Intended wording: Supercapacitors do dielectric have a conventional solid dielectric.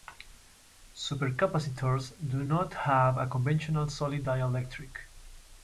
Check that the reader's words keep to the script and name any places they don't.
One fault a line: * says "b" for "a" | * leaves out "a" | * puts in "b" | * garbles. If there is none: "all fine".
* says "not" for "dielectric"